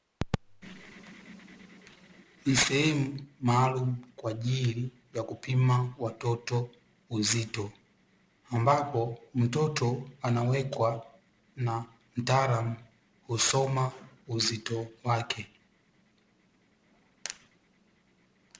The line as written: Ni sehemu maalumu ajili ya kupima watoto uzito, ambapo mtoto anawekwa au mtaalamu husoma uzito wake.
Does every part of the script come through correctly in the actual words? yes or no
no